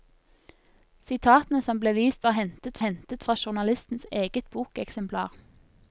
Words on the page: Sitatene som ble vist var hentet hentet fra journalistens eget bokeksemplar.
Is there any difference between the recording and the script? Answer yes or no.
no